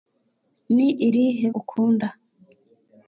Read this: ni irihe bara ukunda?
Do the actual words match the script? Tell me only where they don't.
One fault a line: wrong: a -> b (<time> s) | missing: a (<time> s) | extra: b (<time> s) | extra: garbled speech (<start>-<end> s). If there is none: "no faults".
missing: bara (1.5 s)